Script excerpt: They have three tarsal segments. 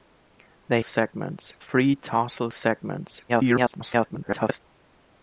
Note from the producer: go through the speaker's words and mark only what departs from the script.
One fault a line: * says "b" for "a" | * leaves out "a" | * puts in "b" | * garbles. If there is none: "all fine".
* says "segments" for "have"
* garbles